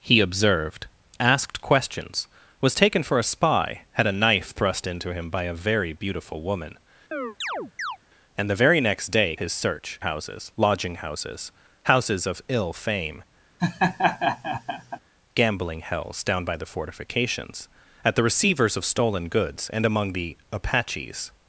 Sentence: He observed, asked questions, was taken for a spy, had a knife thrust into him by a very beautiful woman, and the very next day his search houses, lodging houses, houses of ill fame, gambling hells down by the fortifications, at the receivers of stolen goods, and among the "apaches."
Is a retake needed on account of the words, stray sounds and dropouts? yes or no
yes